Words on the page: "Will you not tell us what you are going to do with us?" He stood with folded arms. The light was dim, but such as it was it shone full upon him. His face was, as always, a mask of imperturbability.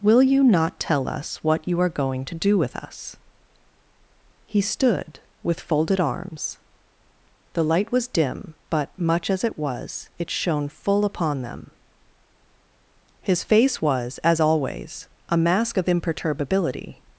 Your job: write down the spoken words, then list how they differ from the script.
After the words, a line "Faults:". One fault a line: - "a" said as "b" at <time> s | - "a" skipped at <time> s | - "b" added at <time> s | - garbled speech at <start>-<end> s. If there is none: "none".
"Will you not tell us what you are going to do with us?" He stood with folded arms. The light was dim, but much as it was it shone full upon them. His face was, as always, a mask of imperturbability.
Faults:
- "such" said as "much" at 9.0 s
- "him" said as "them" at 11.4 s